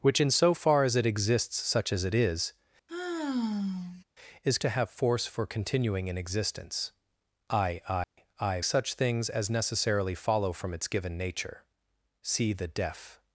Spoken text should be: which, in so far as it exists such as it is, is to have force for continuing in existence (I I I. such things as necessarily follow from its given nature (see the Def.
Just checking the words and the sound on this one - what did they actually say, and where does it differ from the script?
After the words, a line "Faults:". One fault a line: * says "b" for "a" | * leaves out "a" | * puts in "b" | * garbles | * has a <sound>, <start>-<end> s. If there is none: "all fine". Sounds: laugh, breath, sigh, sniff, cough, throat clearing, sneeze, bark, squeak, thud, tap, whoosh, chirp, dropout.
which, in so far as it exists such as it is, is to have force for continuing in existence (I I I. such things as necessarily follow from its given nature (see the Def.
Faults:
* has a sigh, 2.9-4.0 s
* has a dropout, 8.0-8.2 s